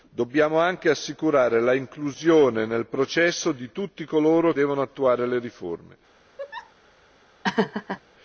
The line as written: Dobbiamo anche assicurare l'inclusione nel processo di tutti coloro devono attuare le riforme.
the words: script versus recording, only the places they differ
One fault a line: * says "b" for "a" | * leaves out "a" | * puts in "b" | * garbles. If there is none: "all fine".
all fine